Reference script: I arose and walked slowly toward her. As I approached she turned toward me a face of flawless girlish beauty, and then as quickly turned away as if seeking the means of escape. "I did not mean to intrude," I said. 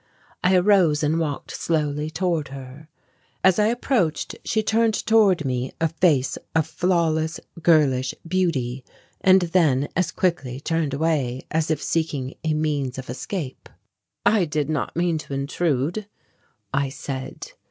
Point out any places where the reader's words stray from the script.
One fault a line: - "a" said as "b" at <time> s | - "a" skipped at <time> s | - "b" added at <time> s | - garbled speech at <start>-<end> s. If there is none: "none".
- "the" said as "a" at 12.4 s